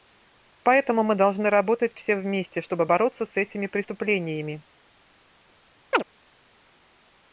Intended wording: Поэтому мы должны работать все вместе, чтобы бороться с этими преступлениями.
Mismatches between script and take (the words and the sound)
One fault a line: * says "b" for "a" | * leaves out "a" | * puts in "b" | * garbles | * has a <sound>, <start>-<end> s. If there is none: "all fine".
* has a chirp, 5.9-6.0 s